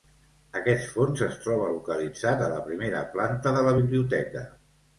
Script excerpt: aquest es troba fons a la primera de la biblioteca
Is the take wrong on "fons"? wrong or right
wrong